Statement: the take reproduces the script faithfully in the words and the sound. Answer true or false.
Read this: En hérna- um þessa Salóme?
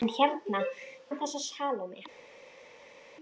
true